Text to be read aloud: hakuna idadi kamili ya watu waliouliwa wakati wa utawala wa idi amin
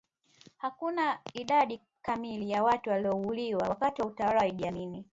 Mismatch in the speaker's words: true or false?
false